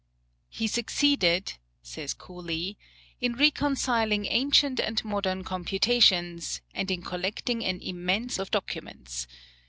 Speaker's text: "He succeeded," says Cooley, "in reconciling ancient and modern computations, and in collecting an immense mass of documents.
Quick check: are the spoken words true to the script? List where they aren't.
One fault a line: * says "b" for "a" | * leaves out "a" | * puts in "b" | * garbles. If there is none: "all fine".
* leaves out "mass"